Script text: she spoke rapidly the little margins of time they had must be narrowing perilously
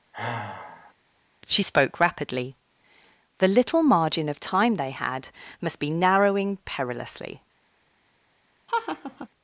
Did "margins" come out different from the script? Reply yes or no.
yes